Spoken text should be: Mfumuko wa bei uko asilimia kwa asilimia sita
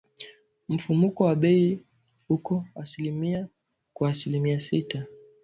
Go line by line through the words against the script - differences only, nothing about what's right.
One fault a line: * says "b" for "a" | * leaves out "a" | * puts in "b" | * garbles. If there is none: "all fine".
all fine